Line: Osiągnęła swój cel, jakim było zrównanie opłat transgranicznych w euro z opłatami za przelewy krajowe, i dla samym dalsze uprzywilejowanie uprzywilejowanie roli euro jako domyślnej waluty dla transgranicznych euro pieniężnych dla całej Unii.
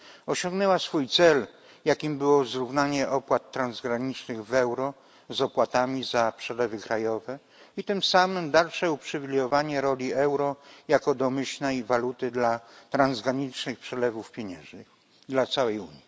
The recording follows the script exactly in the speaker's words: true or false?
false